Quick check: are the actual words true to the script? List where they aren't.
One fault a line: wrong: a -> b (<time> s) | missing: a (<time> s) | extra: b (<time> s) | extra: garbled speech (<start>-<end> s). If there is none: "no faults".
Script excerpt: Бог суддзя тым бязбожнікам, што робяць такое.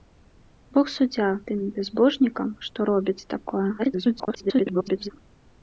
extra: garbled speech (3.8-5.1 s)